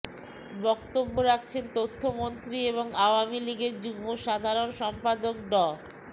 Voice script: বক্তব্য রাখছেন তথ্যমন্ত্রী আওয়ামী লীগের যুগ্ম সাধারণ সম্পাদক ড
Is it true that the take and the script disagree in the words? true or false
true